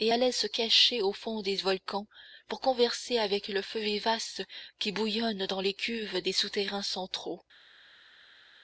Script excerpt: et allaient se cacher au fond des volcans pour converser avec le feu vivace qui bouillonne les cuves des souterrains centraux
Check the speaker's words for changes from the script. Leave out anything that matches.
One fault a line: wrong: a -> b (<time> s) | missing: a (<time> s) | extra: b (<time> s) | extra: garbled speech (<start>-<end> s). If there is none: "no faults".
extra: dans (5.4 s)